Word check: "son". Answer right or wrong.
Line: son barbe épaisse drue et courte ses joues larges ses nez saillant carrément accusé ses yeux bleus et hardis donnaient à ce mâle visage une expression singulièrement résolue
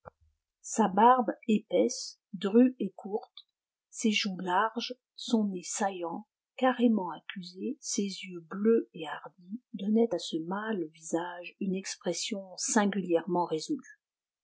wrong